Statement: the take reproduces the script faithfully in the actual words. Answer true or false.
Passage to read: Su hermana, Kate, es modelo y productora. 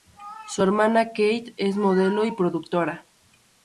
true